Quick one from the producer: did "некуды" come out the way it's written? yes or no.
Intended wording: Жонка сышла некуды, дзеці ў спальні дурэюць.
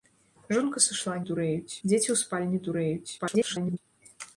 no